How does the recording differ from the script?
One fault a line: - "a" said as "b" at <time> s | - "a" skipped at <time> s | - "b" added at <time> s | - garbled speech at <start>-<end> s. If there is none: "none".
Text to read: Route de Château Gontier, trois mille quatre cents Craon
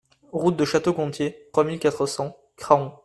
none